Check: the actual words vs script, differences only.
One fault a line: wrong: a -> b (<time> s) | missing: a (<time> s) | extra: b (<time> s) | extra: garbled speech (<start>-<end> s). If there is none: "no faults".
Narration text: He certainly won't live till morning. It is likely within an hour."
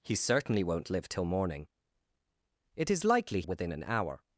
no faults